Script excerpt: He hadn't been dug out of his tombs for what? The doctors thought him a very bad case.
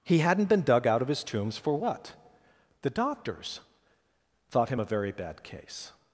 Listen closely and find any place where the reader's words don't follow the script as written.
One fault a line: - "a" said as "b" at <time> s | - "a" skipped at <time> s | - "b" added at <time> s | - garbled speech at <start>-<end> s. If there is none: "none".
none